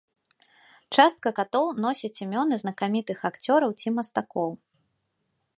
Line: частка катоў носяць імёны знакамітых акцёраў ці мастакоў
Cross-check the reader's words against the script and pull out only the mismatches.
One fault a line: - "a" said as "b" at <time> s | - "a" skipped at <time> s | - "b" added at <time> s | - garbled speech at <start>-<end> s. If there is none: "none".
none